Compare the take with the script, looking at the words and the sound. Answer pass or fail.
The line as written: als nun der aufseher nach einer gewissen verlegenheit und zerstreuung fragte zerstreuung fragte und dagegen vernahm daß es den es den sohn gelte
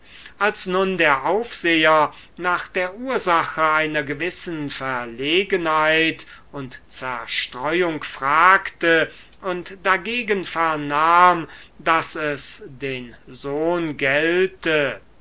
fail